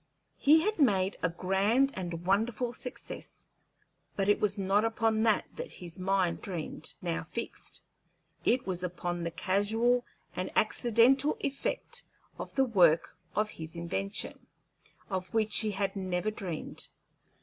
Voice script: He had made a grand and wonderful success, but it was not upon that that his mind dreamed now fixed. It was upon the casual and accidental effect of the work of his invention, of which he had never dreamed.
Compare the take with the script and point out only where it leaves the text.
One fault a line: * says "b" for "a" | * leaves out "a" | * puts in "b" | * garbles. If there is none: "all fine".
all fine